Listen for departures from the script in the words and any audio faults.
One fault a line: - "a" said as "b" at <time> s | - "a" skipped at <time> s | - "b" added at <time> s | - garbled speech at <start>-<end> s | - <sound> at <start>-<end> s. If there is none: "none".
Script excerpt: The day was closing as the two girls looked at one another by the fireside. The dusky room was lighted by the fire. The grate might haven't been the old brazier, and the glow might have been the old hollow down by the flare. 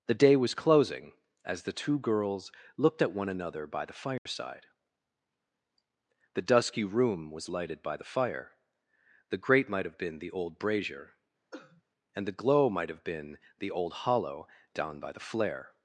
- dropout at 4.2-4.3 s
- "haven't" said as "have" at 9.8 s
- cough at 11.5-11.8 s